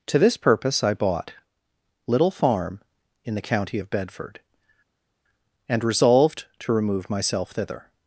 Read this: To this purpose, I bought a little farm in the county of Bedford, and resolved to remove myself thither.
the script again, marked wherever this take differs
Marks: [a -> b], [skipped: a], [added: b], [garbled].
To this purpose, I bought [skipped: a] little farm in the county of Bedford, and resolved to remove myself thither.